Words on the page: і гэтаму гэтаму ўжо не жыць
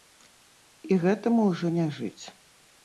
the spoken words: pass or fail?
fail